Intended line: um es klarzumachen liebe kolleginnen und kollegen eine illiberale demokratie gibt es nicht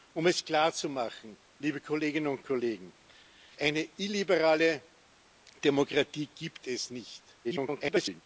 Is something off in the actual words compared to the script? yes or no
yes